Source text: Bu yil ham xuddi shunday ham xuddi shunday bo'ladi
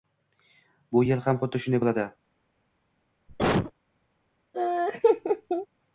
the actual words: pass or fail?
fail